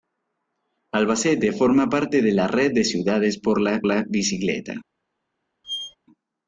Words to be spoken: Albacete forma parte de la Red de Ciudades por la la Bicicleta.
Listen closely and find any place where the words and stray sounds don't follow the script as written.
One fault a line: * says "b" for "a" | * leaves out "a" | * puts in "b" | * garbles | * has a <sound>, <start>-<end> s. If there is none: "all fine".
* has a squeak, 5.6-6.0 s